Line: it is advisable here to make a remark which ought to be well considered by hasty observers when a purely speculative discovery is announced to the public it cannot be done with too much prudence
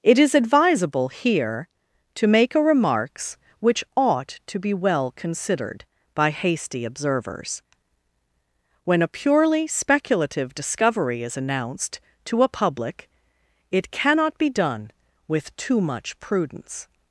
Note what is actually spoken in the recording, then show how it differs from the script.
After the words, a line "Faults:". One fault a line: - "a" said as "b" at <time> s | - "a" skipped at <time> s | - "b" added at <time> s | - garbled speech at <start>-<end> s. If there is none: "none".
it is advisable here to make a remarks which ought to be well considered by hasty observers when a purely speculative discovery is announced to a public it cannot be done with too much prudence
Faults:
- "remark" said as "remarks" at 2.6 s
- "the" said as "a" at 12.4 s